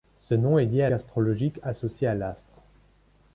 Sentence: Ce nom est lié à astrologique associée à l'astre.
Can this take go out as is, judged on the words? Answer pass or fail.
pass